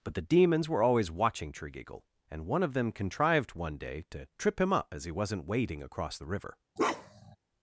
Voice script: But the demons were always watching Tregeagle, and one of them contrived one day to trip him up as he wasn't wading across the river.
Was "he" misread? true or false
false